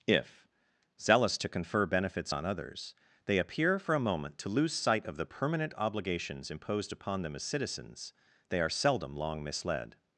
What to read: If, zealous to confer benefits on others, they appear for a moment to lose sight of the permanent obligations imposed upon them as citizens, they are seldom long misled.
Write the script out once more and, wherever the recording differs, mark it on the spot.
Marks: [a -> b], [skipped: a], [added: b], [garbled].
If, zealous to confer benefits on others, they appear for a moment to lose sight of the permanent obligations imposed upon them as citizens, they are seldom long misled.